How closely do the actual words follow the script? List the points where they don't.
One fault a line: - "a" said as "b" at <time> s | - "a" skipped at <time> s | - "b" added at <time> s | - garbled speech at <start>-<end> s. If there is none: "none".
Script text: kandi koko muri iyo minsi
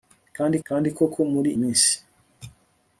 - "kandi" added at 0.7 s
- "iyo" skipped at 1.5 s